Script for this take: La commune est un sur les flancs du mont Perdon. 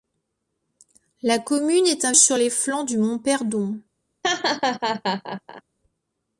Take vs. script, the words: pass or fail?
pass